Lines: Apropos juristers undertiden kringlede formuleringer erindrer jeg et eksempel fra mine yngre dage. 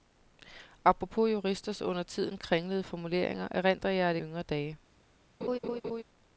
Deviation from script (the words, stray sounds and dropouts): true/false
true